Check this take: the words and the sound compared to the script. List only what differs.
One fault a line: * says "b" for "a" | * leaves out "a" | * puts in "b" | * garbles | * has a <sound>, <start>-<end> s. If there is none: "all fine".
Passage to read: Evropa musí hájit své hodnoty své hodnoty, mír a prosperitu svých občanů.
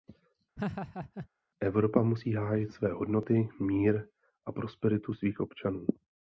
* has a laugh, 0.6-1.3 s
* leaves out "své hodnoty"